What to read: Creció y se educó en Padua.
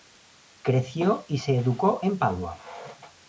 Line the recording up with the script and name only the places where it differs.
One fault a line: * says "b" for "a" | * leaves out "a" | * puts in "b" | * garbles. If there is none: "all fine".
all fine